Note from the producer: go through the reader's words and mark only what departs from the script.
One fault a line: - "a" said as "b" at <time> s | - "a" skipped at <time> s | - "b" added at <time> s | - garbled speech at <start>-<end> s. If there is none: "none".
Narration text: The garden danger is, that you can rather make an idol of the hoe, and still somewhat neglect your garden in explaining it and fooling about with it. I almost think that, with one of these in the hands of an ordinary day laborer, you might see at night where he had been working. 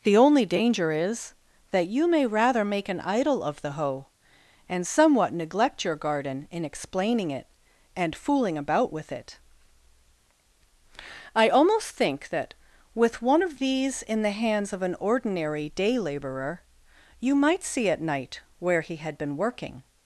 - "garden" said as "only" at 0.2 s
- "can" said as "may" at 2.1 s
- "still" skipped at 4.8 s